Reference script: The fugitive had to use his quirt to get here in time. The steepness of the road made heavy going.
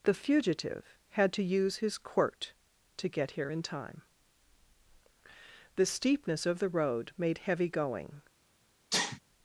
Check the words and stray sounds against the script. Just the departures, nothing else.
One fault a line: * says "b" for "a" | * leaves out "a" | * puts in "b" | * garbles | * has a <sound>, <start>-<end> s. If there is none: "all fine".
* has a sneeze, 8.9-9.2 s